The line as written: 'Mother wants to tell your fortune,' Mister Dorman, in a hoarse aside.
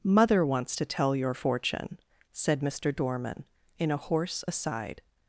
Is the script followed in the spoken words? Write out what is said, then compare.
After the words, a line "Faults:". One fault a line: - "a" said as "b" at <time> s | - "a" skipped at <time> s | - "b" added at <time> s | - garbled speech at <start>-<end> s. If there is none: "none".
'Mother wants to tell your fortune,' said Mister Dorman, in a hoarse aside.
Faults:
- "said" added at 2.3 s